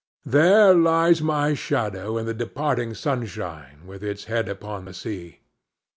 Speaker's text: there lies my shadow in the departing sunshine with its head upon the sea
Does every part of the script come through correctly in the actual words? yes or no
yes